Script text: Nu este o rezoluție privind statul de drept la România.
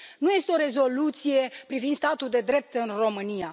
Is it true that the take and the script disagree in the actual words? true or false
true